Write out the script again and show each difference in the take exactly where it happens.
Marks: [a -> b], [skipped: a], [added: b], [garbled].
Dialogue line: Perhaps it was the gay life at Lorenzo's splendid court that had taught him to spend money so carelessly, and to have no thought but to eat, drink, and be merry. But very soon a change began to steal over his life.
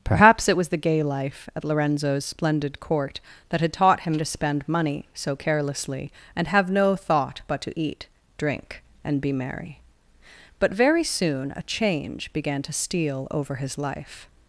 Perhaps it was the gay life at Lorenzo's splendid court that had taught him to spend money so carelessly, and [skipped: to] have no thought but to eat, drink, and be merry. But very soon a change began to steal over his life.